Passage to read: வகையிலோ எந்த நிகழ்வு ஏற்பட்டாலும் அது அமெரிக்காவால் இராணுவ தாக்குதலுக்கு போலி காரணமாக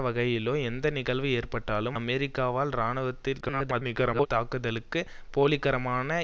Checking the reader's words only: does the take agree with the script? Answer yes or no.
no